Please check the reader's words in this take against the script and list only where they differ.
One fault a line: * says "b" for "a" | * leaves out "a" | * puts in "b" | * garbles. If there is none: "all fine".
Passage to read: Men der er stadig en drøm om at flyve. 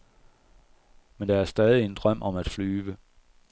all fine